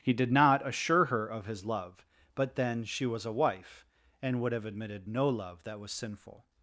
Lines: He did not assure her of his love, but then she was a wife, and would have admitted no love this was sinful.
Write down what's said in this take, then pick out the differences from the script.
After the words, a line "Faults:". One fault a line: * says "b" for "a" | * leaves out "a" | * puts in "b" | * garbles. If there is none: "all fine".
He did not assure her of his love, but then she was a wife, and would have admitted no love that was sinful.
Faults:
* says "that" for "this"